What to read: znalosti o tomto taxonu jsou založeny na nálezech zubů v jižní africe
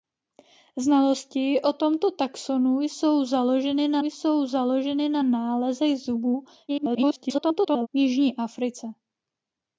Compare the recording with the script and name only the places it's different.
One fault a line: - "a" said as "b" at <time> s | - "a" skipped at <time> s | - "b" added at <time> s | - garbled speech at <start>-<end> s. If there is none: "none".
- "jsou založeny na" added at 4.0 s
- garbled speech at 6.7-7.9 s